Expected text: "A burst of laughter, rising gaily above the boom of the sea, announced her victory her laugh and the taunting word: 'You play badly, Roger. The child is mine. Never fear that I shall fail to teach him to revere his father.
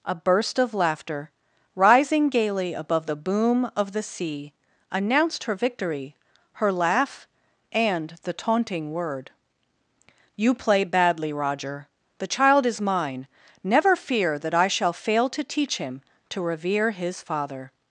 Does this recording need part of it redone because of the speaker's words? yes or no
no